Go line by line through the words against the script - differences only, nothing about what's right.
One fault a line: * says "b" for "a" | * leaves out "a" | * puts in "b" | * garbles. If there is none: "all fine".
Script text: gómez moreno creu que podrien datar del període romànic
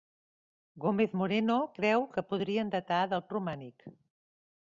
* leaves out "període"